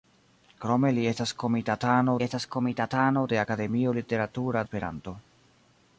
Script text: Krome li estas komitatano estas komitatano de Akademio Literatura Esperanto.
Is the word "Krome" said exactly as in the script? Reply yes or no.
yes